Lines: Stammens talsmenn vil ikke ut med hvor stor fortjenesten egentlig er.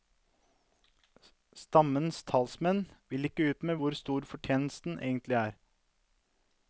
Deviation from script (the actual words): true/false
false